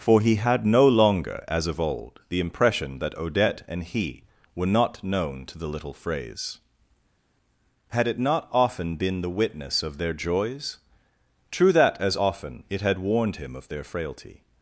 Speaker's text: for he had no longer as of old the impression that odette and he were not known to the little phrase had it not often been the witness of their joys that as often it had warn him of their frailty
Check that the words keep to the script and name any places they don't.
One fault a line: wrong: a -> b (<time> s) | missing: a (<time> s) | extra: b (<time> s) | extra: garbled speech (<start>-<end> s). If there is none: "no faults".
extra: true (11.5 s)
wrong: warn -> warned (13.0 s)